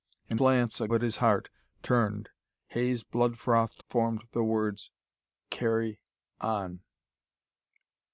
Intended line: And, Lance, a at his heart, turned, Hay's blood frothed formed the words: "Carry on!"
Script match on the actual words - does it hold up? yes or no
yes